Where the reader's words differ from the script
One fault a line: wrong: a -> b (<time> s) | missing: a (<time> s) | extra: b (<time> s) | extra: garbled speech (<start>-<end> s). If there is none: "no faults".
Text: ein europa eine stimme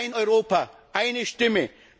no faults